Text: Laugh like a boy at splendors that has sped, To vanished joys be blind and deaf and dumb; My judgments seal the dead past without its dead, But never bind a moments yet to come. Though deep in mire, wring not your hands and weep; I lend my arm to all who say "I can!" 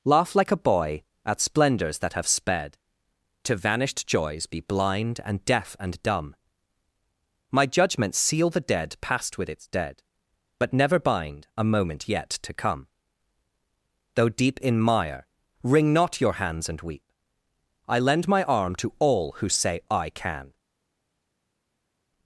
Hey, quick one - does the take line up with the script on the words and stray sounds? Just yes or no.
no